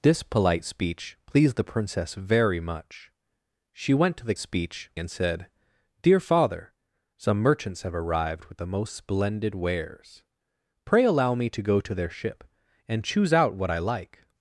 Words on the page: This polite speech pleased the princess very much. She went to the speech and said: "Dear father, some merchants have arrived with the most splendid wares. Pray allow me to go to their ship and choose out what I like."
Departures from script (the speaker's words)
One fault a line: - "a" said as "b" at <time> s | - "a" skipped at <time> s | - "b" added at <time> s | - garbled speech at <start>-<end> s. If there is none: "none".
none